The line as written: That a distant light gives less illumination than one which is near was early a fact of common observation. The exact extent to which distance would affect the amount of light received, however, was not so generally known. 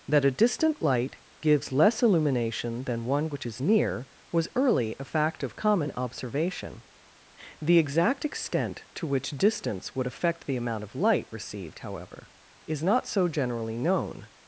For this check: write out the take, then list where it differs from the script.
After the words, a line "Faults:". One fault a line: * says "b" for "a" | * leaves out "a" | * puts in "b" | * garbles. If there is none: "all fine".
That a distant light gives less illumination than one which is near was early a fact of common observation. The exact extent to which distance would affect the amount of light received, however, is not so generally known.
Faults:
* says "is" for "was"